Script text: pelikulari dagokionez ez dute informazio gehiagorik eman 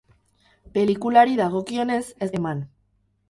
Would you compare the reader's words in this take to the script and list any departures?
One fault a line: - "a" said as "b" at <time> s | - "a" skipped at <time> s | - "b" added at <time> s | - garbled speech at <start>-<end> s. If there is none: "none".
- "dute informazio gehiagorik" skipped at 2.3 s